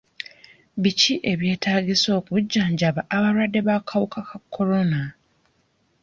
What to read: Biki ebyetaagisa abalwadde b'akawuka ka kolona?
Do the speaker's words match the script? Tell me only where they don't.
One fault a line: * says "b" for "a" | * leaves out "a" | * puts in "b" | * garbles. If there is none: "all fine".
* puts in "okujjanjaba"